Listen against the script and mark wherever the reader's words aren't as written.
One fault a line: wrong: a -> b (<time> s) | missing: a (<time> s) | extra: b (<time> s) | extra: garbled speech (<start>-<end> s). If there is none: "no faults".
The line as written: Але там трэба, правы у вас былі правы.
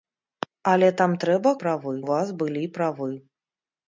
no faults